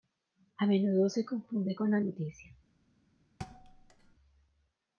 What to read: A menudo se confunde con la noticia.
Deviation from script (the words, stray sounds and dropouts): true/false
true